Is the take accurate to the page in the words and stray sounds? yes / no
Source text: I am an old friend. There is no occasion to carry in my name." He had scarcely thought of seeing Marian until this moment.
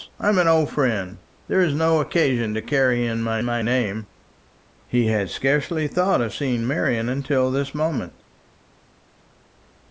no